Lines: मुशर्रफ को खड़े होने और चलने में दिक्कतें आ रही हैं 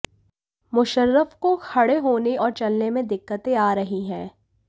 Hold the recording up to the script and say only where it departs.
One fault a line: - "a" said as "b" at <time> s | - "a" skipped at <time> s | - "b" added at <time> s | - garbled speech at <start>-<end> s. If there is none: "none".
none